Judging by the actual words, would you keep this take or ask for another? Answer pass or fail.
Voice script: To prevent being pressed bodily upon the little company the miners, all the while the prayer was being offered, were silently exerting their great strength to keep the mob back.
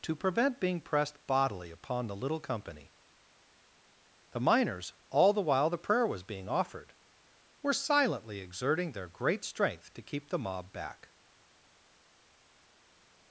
pass